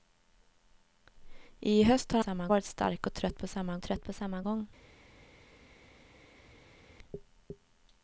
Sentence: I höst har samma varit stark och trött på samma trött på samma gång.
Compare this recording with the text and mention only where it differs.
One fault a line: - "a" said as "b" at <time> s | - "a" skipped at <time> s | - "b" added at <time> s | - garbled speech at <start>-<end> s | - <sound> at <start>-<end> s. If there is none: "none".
none